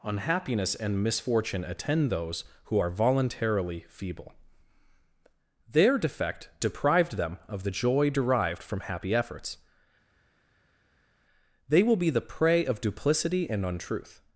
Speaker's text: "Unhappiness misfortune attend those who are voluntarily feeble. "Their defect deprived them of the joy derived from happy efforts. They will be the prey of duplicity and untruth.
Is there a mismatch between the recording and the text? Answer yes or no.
yes